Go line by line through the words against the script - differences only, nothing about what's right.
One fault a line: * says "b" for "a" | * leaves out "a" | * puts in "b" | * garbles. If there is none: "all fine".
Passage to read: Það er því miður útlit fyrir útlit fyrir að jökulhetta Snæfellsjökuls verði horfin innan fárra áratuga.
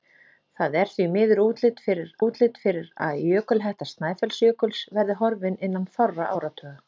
all fine